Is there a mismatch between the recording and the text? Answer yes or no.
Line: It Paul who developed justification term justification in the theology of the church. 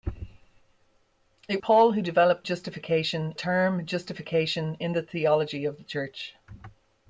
no